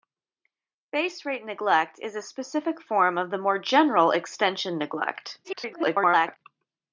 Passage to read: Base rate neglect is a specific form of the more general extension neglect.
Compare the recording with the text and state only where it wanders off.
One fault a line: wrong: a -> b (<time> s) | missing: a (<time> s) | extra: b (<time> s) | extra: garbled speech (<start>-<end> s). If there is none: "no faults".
extra: garbled speech (5.4-6.4 s)